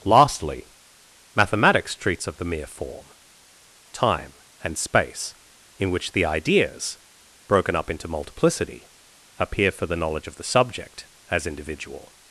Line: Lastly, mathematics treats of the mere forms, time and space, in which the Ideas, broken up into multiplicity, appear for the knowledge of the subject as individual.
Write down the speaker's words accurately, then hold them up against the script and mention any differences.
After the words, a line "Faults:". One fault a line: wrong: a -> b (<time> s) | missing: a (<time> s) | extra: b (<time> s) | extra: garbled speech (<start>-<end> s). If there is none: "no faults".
Lastly, mathematics treats of the mere form, time and space, in which the Ideas, broken up into multiplicity, appear for the knowledge of the subject as individual.
Faults:
wrong: forms -> form (2.6 s)